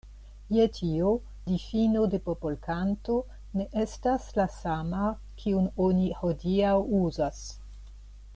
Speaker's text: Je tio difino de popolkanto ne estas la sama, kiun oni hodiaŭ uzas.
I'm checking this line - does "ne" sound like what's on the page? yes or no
yes